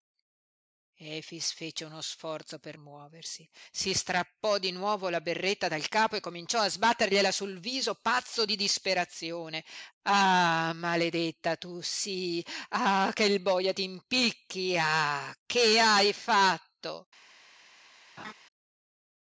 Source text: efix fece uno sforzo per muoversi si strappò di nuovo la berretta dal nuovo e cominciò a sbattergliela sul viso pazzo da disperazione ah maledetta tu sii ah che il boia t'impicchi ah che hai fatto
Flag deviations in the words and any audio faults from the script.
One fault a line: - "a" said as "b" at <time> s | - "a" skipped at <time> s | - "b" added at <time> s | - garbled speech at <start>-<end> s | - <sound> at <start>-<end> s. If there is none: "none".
- "nuovo" said as "capo" at 5.9 s
- "da" said as "di" at 8.4 s
- laugh at 18.2-18.3 s